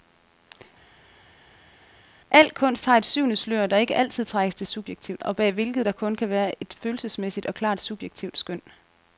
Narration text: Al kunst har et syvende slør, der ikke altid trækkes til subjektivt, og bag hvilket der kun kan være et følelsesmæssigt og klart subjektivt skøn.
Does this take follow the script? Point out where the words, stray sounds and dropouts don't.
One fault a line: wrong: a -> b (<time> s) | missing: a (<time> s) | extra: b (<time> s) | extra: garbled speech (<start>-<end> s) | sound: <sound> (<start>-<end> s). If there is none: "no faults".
no faults